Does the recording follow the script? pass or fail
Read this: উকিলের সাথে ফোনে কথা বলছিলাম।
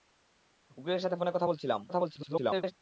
fail